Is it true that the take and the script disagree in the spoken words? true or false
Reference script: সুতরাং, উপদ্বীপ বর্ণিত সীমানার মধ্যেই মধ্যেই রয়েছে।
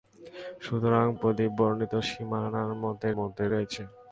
false